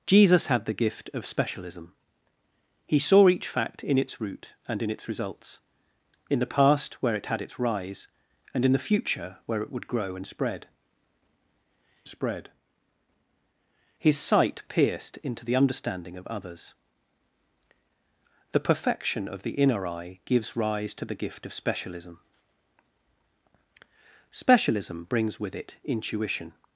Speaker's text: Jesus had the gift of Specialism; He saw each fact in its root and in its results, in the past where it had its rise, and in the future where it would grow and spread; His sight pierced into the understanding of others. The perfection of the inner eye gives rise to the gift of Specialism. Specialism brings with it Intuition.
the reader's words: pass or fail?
fail